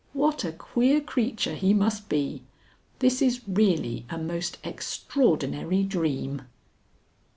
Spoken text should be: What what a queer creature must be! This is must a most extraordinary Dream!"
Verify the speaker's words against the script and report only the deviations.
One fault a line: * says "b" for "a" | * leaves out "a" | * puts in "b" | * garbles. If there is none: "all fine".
* leaves out "what"
* puts in "he"
* says "really" for "must"